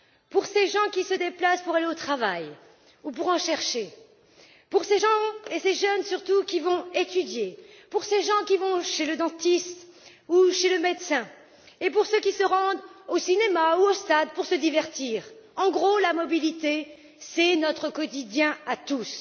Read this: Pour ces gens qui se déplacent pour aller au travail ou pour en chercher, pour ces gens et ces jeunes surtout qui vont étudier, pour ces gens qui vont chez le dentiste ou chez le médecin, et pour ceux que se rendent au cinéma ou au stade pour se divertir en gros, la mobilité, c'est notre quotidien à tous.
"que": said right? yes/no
no